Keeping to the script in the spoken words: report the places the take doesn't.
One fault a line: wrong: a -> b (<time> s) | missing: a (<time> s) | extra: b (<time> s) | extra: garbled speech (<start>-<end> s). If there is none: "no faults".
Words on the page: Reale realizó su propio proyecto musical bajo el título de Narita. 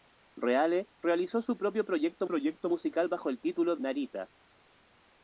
extra: proyecto (2.3 s)
missing: de (3.8 s)